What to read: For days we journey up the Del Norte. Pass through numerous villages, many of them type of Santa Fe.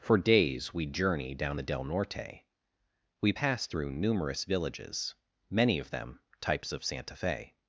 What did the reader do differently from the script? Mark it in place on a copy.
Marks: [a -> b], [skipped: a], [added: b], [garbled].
For days we journey [up -> down] the Del Norte. [added: We] Pass through numerous villages, many of them [type -> types] of Santa Fe.